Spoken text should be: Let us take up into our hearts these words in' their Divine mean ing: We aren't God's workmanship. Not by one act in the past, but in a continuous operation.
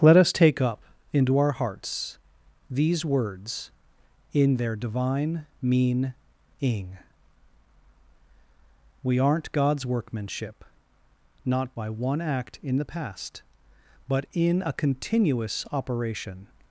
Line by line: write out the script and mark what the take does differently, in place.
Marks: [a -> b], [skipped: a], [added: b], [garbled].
Let us take up into our hearts these words in' their Divine mean ing: We aren't God's workmanship. Not by one act in the past, but in a continuous operation.